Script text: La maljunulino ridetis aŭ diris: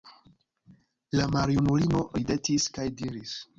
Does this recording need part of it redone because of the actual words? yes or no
yes